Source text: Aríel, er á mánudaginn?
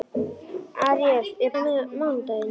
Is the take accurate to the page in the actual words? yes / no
yes